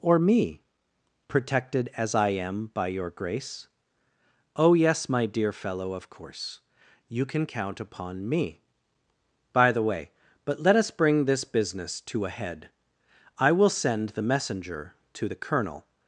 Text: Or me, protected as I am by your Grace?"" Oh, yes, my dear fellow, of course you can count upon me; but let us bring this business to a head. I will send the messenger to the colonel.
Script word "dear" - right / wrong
right